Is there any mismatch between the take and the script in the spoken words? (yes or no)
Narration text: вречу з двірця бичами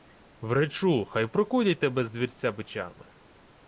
yes